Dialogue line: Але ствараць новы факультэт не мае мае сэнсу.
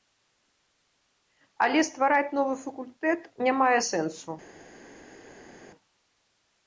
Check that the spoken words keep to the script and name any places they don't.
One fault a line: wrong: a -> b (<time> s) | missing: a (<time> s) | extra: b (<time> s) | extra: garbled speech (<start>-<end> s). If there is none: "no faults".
missing: мае (3.8 s)